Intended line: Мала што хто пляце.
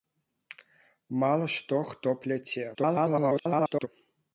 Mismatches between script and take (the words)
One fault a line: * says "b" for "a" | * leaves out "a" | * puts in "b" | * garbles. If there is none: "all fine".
* garbles